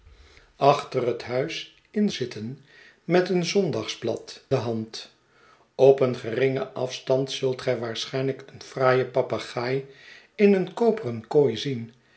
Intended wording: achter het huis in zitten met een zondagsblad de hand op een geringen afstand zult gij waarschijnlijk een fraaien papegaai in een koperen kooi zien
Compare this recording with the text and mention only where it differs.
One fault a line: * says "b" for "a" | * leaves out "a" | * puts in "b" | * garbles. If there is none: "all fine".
all fine